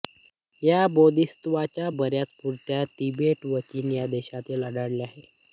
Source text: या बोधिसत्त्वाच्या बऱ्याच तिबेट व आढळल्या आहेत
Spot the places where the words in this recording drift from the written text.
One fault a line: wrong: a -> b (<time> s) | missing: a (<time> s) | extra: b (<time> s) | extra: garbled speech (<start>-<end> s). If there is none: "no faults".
extra: मूर्ती (2.4 s)
extra: चीन या देशांत (3.6 s)